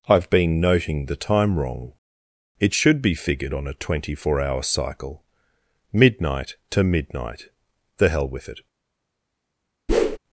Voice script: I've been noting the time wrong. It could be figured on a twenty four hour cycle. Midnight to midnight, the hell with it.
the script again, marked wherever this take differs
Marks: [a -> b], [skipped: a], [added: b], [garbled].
I've been noting the time wrong. It [could -> should] be figured on a twenty four hour cycle. Midnight to midnight, the hell with it.